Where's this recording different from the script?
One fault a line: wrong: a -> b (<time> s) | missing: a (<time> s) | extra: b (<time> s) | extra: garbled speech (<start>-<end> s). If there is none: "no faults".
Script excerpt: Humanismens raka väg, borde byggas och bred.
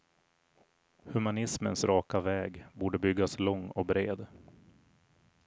extra: lång (3.4 s)